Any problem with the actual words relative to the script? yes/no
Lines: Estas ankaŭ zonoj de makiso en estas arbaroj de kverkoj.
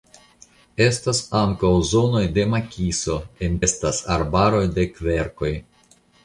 no